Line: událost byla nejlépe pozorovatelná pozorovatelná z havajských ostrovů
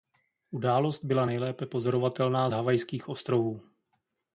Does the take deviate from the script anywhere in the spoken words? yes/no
yes